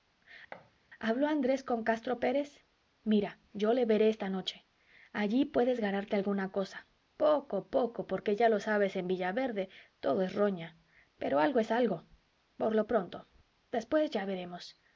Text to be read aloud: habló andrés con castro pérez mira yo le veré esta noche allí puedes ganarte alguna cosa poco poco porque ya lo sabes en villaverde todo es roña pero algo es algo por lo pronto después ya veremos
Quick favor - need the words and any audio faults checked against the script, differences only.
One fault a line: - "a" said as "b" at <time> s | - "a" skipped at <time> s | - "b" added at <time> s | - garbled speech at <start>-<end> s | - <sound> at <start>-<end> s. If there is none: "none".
- thud at 0.5-0.7 s